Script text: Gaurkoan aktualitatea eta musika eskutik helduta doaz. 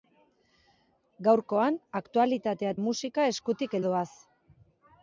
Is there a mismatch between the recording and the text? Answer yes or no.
yes